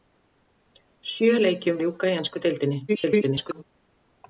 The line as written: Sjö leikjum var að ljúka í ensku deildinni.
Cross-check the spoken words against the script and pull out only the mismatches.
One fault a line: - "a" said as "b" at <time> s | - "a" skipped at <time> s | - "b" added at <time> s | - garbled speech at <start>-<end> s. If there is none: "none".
- "var" skipped at 1.8 s
- garbled speech at 2.9-3.6 s